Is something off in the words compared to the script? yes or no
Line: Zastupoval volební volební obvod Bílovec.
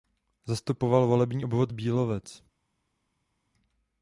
yes